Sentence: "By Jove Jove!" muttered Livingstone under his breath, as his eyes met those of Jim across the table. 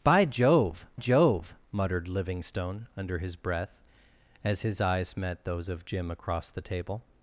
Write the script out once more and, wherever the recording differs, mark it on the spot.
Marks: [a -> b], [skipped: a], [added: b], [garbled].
"By Jove Jove!" muttered Livingstone under his breath, as his eyes met those of Jim across the table.